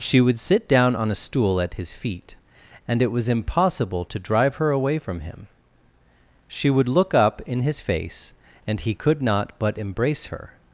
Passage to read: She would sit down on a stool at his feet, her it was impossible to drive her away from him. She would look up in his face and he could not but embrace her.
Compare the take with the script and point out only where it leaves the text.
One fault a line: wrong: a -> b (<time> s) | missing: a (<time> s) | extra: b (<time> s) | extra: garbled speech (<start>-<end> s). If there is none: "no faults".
wrong: her -> and (2.9 s)